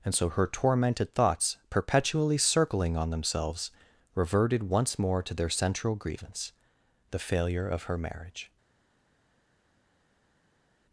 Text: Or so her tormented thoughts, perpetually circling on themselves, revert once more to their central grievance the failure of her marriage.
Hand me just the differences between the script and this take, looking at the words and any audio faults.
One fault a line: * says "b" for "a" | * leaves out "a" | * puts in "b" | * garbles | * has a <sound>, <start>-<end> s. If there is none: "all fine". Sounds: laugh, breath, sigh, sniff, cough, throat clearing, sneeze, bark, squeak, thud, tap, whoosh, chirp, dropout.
* says "And" for "Or"
* says "reverted" for "revert"